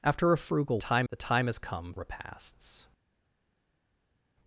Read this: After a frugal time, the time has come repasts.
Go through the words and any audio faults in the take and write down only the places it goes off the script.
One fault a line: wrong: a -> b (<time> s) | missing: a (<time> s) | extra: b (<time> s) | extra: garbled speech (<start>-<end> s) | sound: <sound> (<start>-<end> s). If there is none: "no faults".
no faults